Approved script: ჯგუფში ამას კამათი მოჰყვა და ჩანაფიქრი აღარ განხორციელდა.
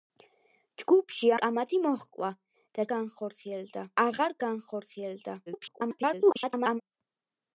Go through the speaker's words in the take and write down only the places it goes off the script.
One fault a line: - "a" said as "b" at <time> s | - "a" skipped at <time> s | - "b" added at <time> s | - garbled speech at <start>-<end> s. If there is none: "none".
- "ამას" skipped at 1.3 s
- "ჩანაფიქრი" said as "განხორციელდა" at 3.0 s
- garbled speech at 5.5-6.8 s